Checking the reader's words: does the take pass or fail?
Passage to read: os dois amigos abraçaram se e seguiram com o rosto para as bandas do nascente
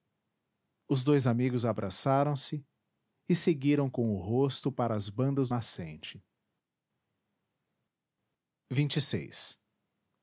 fail